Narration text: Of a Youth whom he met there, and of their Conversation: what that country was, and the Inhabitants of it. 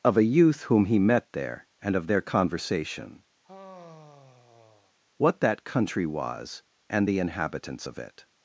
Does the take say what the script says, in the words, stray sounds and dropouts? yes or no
no